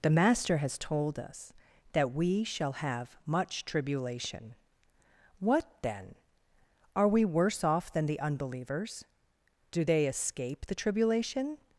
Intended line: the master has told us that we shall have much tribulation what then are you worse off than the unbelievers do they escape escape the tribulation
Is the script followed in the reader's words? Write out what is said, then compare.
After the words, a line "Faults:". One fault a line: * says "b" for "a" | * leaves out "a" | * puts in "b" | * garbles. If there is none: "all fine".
the master has told us that we shall have much tribulation what then are we worse off than the unbelievers do they escape the tribulation
Faults:
* says "we" for "you"
* leaves out "escape"